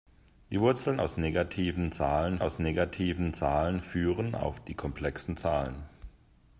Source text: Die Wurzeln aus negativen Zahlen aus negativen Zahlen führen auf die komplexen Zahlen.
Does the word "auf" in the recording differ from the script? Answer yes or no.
no